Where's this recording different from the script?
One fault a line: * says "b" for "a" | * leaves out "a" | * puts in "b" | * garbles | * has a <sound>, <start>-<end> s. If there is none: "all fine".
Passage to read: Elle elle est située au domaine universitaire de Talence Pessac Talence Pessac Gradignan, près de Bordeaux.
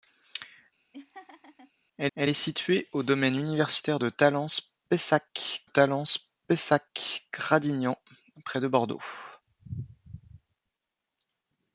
* has a laugh, 0.9-1.7 s